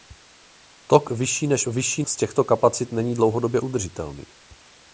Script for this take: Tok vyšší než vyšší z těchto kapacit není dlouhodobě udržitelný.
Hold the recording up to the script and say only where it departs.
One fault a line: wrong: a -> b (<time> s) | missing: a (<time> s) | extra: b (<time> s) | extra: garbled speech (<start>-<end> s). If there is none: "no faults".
no faults